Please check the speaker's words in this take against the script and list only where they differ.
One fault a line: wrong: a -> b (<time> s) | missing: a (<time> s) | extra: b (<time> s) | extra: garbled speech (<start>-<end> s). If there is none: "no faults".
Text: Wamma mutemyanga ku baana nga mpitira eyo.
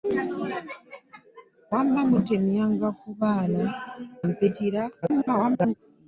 missing: nga (3.6 s)
extra: garbled speech (5.0-5.7 s)